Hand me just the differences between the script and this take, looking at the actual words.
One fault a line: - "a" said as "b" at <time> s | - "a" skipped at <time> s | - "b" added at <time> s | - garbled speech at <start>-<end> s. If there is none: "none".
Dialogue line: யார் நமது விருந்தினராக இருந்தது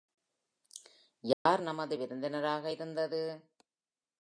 none